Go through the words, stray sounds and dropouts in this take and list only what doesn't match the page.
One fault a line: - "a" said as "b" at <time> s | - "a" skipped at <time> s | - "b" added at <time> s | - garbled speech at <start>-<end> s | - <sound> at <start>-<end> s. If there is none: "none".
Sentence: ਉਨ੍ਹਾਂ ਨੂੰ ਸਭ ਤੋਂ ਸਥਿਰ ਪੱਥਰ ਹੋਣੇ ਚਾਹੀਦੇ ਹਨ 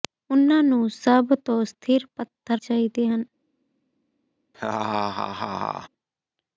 - "ਹੋਣੇ" skipped at 2.6 s
- laugh at 4.5-5.9 s